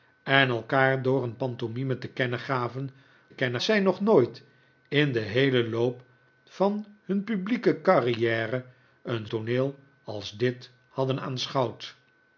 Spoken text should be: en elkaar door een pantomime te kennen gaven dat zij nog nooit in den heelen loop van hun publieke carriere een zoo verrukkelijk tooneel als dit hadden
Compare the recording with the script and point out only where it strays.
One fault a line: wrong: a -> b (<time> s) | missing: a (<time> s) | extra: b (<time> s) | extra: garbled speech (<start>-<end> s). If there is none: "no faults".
wrong: dat -> kennen (3.3 s)
missing: zoo verrukkelijk (9.3 s)